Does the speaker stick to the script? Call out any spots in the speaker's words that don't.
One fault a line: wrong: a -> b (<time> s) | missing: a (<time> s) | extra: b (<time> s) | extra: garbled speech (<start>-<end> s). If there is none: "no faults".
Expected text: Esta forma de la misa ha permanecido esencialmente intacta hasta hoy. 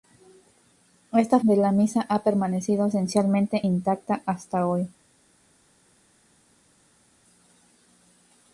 missing: forma (1.4 s)